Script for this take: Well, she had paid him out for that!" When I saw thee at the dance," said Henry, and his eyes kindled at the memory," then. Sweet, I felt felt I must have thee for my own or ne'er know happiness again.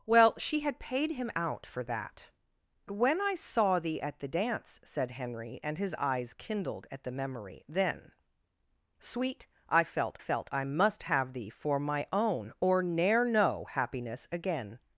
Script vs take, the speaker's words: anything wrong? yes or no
no